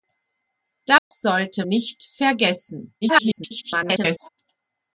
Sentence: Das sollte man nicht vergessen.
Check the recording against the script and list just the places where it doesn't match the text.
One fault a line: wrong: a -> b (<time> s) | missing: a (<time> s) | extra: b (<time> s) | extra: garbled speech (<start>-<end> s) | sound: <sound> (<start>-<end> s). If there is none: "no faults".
sound: dropout (1.0-1.1 s)
missing: man (1.7 s)
extra: garbled speech (3.0-4.3 s)